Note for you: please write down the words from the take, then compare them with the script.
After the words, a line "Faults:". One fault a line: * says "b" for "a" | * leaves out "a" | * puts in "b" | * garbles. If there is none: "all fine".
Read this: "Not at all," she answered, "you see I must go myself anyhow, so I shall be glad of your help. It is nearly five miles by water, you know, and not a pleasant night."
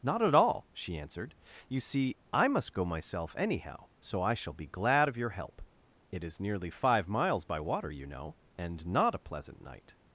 "Not at all," she answered, "you see I must go myself anyhow, so I shall be glad of your help. It is nearly five miles by water, you know, and not a pleasant night."
Faults:
all fine